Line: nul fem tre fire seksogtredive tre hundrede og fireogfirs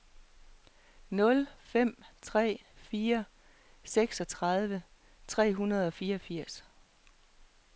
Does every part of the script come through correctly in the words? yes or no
yes